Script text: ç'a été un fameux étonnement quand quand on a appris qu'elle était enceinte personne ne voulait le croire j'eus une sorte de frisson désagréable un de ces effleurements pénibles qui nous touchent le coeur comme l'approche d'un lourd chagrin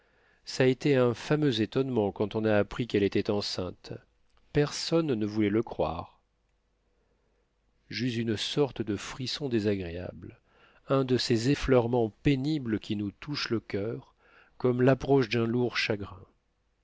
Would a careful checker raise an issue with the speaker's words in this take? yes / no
yes